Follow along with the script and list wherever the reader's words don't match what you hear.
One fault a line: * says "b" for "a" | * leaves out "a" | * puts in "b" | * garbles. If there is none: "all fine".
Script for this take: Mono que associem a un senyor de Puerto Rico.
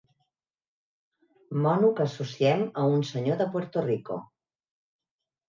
all fine